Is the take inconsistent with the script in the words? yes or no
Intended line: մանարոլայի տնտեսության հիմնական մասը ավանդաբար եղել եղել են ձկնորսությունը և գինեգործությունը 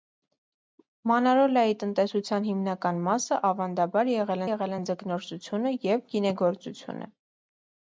no